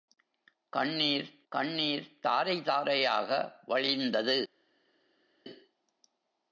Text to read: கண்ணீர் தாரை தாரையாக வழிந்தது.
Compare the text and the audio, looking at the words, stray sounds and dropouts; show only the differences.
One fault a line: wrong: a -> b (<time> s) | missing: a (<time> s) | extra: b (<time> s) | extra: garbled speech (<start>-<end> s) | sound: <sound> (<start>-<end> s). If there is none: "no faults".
extra: கண்ணீர் (1.5 s)